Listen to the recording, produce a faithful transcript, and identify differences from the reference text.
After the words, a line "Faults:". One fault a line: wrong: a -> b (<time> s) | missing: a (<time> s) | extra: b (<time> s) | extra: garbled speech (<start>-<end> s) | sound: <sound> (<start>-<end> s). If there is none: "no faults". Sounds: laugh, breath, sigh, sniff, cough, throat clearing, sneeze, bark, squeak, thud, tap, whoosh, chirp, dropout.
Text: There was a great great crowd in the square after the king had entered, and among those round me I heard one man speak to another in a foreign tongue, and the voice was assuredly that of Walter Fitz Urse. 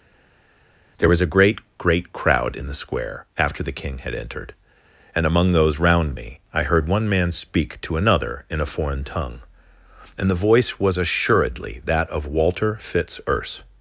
There was a great great crowd in the square after the king had entered, and among those round me I heard one man speak to another in a foreign tongue, and the voice was assuredly that of Walter Fitz Urse.
Faults:
no faults